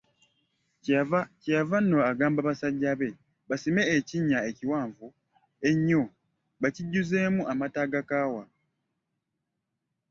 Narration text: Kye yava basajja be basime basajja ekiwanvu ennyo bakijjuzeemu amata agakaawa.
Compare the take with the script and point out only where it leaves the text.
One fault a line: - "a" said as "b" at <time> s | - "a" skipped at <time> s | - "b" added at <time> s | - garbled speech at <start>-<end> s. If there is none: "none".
- "nno agamba" added at 1.8 s
- "basajja" said as "ekinnya" at 4.0 s